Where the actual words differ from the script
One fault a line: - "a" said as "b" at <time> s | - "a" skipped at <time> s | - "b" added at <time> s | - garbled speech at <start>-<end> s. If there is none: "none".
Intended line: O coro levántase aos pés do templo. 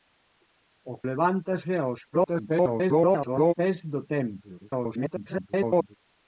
- "coro" skipped at 0.9 s
- garbled speech at 2.1-3.5 s
- garbled speech at 4.6-6.0 s